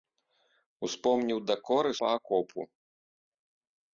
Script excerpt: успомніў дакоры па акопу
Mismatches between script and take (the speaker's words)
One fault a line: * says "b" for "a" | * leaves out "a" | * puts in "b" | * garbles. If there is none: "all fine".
all fine